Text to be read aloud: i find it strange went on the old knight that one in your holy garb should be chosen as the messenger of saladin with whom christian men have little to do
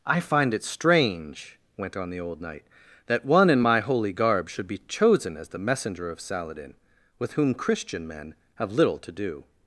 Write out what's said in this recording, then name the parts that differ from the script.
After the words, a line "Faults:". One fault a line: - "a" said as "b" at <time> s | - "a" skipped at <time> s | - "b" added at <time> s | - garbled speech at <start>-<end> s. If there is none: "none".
i find it strange went on the old knight that one in my holy garb should be chosen as the messenger of saladin with whom christian men have little to do
Faults:
- "your" said as "my" at 3.6 s